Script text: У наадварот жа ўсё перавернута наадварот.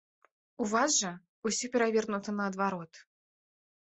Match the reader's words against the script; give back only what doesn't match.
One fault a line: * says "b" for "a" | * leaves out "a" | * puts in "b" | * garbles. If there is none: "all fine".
* says "вас" for "наадварот"